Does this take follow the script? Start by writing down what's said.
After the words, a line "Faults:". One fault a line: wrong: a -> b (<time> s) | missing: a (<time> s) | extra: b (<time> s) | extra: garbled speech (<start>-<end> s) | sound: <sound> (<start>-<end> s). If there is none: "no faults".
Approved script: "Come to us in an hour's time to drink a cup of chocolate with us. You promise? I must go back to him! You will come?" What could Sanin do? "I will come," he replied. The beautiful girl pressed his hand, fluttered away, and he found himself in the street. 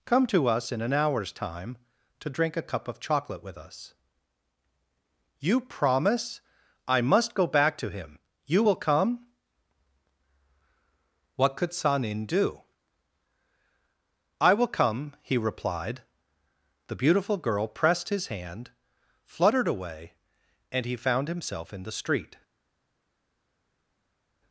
"Come to us in an hour's time to drink a cup of chocolate with us. You promise? I must go back to him! You will come?" What could Sanin do? "I will come," he replied. The beautiful girl pressed his hand, fluttered away, and he found himself in the street.
Faults:
no faults